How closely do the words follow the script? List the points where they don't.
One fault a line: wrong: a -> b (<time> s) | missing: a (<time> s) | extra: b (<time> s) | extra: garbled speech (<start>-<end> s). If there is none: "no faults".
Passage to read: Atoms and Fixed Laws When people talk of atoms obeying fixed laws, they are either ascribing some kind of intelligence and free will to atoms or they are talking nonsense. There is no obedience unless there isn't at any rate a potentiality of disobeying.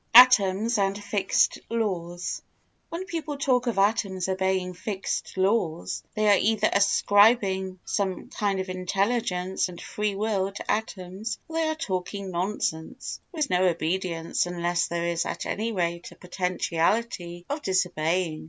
wrong: isn't -> is (15.1 s)